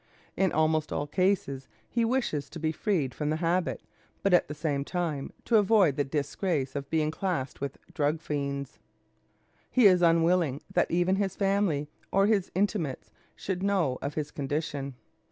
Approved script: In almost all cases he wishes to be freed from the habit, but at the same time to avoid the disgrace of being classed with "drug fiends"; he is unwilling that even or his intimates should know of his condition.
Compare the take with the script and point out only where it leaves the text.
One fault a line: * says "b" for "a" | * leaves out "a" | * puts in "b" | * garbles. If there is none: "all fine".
* puts in "his family"